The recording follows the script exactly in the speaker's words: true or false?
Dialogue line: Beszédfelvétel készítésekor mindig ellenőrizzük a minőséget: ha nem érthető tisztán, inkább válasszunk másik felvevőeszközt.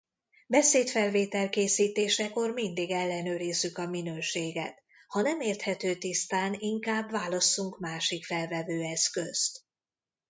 true